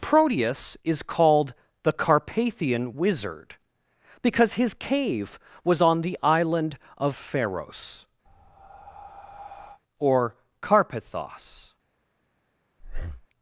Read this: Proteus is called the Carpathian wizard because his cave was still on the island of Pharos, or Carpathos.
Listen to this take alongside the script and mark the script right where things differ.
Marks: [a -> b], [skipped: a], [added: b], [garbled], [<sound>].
Proteus is called the Carpathian wizard because his cave was [skipped: still] on the island of Pharos, [breath] or Carpathos. [breath]